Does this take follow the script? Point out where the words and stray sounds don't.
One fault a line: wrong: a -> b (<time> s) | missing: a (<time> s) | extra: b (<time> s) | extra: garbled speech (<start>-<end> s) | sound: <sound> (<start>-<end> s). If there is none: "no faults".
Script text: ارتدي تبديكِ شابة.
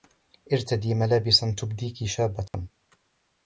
extra: ملابسا (0.9 s)
sound: dropout (2.5-2.5 s)